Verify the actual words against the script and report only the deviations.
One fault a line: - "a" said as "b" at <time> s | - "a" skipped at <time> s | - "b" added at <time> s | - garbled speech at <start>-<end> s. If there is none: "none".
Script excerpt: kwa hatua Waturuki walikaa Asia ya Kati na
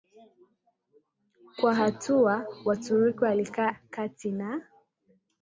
- "Asia" skipped at 3.7 s